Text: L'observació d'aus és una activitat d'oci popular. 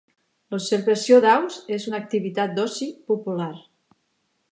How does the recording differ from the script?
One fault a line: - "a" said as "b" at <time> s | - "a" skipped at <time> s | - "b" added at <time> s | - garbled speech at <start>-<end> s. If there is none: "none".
none